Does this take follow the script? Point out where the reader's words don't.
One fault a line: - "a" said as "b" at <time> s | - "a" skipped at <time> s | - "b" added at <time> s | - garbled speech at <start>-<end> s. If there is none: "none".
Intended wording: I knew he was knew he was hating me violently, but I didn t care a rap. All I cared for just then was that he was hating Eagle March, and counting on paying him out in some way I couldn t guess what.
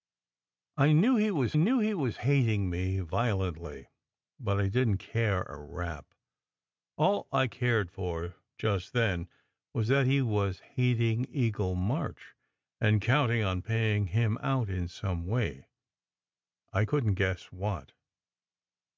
none